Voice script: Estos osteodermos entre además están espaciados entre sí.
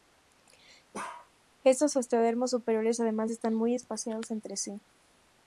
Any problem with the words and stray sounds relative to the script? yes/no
yes